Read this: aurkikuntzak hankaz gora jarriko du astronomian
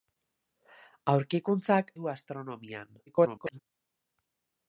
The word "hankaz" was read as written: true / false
false